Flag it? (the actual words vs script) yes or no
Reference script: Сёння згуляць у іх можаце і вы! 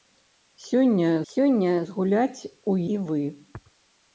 yes